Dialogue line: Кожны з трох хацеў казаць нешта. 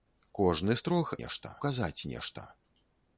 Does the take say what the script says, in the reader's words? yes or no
no